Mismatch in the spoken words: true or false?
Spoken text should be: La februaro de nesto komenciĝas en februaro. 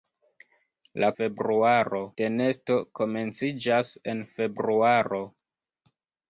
false